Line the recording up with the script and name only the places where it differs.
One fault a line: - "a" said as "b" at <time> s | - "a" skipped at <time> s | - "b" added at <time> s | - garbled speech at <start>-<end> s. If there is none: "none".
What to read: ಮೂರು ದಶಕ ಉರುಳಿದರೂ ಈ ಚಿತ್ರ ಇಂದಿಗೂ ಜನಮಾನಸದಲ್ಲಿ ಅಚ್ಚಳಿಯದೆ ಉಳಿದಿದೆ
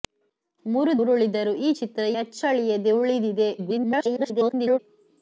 - "ದಶಕ" skipped at 0.9 s
- "ಇಂದಿಗೂ ಜನಮಾನಸದಲ್ಲಿ" skipped at 2.0 s
- garbled speech at 3.6-4.8 s